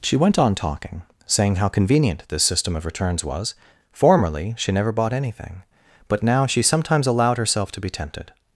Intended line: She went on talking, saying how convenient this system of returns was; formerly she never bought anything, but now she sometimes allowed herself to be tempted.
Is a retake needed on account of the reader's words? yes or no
no